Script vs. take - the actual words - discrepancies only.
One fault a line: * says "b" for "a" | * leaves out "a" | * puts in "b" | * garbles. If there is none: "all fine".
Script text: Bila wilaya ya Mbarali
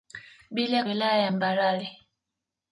all fine